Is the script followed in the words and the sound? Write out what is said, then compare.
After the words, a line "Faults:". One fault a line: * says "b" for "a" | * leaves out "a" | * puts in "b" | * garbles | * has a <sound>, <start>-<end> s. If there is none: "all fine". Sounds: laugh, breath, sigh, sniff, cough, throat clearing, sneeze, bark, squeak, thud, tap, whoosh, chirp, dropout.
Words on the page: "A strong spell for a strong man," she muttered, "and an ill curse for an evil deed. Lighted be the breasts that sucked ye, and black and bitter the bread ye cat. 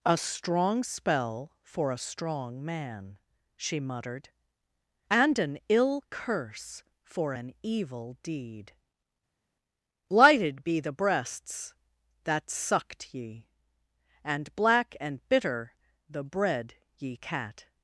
"A strong spell for a strong man," she muttered, "and an ill curse for an evil deed. Lighted be the breasts that sucked ye, and black and bitter the bread ye cat.
Faults:
all fine